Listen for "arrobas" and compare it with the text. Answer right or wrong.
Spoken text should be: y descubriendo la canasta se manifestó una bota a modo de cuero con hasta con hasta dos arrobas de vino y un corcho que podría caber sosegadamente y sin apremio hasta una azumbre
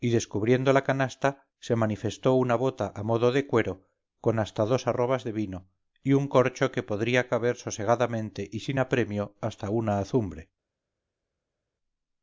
right